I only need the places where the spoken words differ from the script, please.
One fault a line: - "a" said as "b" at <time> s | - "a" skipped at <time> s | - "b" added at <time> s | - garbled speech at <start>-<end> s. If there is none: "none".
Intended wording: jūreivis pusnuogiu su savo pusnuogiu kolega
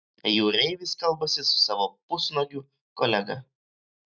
- "pusnuogiu" said as "kalbasi" at 1.0 s